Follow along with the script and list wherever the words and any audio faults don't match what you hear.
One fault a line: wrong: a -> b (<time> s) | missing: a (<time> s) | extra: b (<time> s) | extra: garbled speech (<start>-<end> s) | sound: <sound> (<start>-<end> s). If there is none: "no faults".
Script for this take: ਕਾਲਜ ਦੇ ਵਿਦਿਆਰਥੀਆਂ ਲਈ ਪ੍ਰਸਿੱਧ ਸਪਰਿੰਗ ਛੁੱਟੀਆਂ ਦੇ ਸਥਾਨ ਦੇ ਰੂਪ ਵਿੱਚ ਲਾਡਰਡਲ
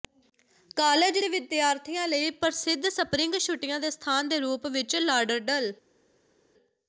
no faults